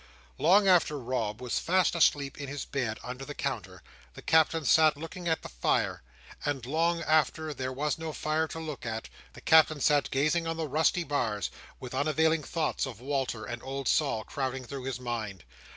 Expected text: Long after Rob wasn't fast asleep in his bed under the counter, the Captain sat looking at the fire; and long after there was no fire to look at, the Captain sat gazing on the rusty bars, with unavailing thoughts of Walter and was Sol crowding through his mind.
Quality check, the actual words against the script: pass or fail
fail